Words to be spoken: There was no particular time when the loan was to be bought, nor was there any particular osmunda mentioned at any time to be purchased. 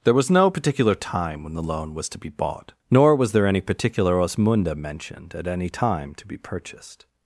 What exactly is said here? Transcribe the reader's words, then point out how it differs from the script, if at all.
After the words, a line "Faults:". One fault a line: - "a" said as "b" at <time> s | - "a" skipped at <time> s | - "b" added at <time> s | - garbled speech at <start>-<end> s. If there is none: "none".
There was no particular time when the loan was to be bought, nor was there any particular osmunda mentioned at any time to be purchased.
Faults:
none